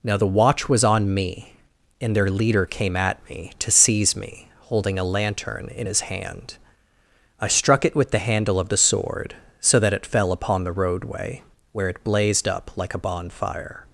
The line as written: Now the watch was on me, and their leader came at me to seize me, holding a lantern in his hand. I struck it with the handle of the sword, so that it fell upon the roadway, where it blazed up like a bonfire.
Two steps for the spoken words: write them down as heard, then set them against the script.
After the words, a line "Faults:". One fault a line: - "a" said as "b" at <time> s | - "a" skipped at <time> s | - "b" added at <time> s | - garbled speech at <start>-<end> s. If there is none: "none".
Now the watch was on me, and their leader came at me to seize me, holding a lantern in his hand. I struck it with the handle of the sword, so that it fell upon the roadway, where it blazed up like a bonfire.
Faults:
none